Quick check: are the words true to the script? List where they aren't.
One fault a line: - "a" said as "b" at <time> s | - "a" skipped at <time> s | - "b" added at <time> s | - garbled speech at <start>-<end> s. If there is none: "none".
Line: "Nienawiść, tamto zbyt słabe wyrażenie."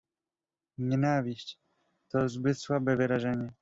- "tamto" said as "to" at 2.1 s